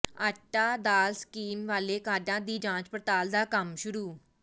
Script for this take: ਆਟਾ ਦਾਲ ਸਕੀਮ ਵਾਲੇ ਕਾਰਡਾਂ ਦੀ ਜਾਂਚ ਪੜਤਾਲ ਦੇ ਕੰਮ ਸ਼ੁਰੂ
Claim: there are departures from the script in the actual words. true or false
true